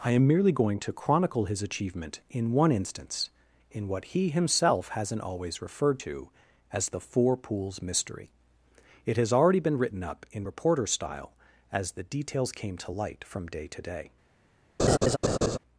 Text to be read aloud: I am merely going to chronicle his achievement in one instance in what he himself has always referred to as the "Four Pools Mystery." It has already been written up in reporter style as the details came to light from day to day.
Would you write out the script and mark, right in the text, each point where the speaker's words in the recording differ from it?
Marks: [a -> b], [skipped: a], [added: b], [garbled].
I am merely going to chronicle his achievement in one instance in what he himself [has -> hasn't] always referred to as the "Four Pools Mystery." It has already been written up in reporter style as the details came to light from day to day.